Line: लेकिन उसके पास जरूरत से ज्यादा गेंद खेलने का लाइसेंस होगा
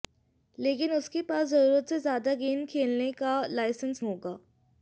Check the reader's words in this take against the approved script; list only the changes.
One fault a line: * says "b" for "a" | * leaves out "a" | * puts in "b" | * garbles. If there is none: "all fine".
all fine